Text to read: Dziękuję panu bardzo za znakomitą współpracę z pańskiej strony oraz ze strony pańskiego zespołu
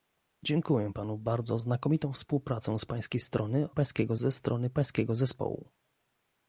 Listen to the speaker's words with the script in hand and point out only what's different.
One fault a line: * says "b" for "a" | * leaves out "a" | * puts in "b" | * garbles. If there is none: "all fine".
* leaves out "za"
* says "pańskiego" for "oraz"